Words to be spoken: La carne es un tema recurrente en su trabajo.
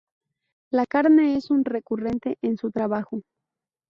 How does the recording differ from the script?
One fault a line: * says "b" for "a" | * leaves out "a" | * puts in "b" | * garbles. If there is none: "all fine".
* leaves out "tema"